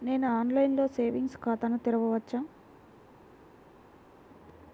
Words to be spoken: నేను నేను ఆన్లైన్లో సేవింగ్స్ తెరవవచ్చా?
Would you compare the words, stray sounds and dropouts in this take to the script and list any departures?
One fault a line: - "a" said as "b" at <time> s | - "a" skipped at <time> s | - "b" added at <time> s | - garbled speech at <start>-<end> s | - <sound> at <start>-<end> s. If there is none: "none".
- "నేను" skipped at 0.3 s
- "ఖాతాను" added at 1.4 s